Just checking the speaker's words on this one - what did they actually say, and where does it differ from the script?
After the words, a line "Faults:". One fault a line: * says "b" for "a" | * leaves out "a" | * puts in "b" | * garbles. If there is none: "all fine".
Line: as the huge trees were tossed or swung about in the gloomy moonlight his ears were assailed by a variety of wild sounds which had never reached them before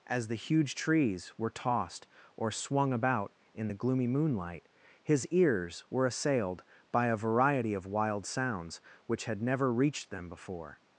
as the huge trees were tossed or swung about in the gloomy moonlight his ears were assailed by a variety of wild sounds which had never reached them before
Faults:
all fine